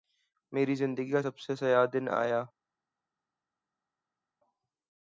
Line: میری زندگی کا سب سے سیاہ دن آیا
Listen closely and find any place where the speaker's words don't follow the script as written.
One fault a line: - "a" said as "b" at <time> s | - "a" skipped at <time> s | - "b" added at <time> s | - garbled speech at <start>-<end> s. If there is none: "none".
none